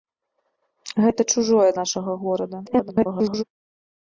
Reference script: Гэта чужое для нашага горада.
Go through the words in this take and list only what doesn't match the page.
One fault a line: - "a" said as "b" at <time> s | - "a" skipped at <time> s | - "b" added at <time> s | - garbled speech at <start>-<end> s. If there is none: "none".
- "для" skipped at 1.7 s
- garbled speech at 2.7-3.4 s